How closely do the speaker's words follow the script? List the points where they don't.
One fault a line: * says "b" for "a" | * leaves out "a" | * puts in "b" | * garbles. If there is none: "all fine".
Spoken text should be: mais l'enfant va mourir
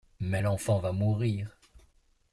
all fine